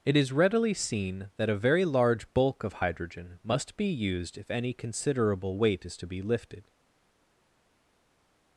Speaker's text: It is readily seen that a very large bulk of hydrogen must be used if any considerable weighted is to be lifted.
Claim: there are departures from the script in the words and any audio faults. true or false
true